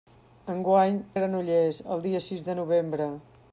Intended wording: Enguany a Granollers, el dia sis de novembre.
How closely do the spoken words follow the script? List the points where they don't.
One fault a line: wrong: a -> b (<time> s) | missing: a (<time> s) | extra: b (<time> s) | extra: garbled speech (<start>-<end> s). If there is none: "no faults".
no faults